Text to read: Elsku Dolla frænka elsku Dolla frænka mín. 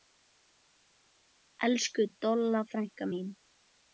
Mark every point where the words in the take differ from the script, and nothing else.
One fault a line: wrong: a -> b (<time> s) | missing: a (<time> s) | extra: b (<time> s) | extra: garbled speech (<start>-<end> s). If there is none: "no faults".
missing: elsku Dolla frænka (3.0 s)